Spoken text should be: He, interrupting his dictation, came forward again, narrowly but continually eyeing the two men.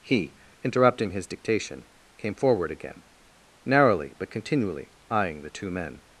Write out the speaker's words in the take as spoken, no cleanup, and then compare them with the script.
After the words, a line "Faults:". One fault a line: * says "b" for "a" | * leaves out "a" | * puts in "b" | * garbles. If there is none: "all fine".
He, interrupting his dictation, came forward again, narrowly but continually eyeing the two men.
Faults:
all fine